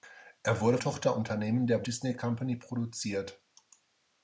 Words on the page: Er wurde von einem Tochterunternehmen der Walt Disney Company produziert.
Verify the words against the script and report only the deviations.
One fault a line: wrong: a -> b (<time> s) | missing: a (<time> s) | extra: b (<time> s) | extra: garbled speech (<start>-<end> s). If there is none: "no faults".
missing: von einem (0.8 s)
missing: Walt (1.8 s)